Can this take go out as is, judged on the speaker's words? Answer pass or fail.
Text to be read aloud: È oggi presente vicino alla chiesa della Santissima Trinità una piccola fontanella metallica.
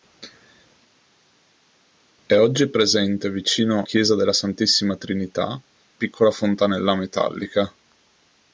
fail